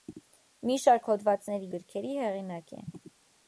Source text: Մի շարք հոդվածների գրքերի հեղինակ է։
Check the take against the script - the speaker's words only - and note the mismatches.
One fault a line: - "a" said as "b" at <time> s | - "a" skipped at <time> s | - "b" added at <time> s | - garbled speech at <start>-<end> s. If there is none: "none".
none